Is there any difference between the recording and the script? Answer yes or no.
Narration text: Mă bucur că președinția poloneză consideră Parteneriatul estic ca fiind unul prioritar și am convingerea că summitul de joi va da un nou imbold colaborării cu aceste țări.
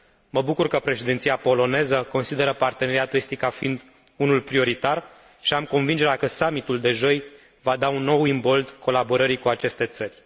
no